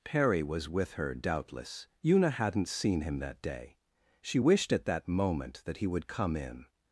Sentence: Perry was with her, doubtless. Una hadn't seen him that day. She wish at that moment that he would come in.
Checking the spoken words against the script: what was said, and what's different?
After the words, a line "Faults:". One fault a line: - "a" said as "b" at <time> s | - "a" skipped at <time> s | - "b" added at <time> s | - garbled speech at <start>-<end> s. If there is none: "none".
Perry was with her, doubtless. Una hadn't seen him that day. She wished at that moment that he would come in.
Faults:
- "wish" said as "wished" at 4.4 s